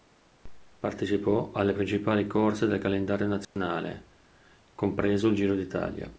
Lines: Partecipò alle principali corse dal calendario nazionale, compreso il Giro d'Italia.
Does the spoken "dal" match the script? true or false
false